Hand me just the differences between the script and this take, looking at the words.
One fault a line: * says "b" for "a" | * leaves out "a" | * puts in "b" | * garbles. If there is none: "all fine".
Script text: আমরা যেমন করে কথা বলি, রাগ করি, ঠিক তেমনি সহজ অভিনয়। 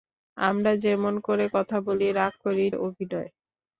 * leaves out "ঠিক তেমনি সহজ"